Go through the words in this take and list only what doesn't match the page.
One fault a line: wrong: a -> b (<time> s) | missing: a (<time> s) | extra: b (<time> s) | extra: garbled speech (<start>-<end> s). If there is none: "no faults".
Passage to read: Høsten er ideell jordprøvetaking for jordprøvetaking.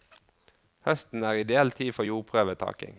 wrong: jordprøvetaking -> tid (1.7 s)